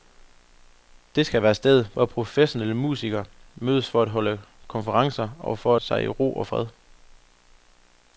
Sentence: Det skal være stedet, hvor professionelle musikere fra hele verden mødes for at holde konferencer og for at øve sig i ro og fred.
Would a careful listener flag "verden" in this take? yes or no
yes